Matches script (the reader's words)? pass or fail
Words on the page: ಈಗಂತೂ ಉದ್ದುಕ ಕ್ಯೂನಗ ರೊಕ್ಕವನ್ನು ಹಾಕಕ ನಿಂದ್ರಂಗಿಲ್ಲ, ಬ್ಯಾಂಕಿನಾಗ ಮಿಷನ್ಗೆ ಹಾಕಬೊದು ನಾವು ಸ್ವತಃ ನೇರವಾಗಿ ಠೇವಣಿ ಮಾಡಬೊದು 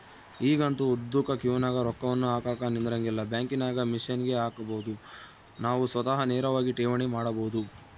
pass